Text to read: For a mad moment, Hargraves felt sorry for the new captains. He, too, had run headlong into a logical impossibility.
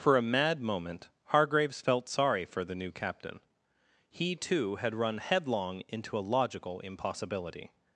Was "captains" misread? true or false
true